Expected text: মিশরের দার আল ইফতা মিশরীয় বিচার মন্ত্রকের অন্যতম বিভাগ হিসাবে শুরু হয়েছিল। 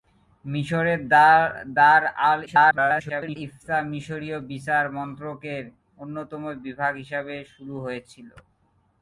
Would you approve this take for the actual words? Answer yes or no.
no